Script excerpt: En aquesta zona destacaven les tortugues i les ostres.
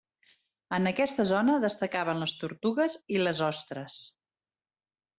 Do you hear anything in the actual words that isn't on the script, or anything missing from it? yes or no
no